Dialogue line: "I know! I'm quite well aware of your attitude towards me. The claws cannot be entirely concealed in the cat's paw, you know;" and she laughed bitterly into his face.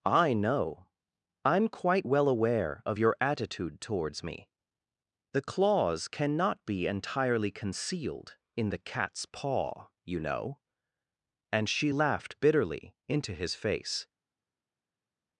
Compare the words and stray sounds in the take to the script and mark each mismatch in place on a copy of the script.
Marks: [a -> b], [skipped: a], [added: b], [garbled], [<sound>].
"I know! I'm quite well aware of your attitude towards me. The claws cannot be entirely concealed in the cat's paw, you know;" and she laughed bitterly into his face.